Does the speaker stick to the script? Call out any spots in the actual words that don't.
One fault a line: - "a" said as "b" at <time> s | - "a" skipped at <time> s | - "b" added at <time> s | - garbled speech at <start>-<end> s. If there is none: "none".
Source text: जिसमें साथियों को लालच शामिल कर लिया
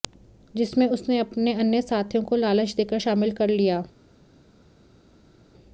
- "उसने अपने अन्य" added at 0.9 s
- "देकर" added at 2.8 s